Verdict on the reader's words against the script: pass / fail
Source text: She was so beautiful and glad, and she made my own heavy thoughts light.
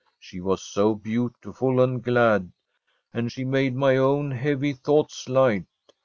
pass